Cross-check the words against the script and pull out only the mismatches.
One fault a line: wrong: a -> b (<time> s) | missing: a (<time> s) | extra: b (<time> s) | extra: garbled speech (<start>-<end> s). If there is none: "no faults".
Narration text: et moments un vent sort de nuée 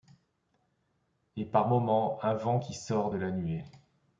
extra: par (1.4 s)
extra: qui (2.6 s)
extra: la (3.2 s)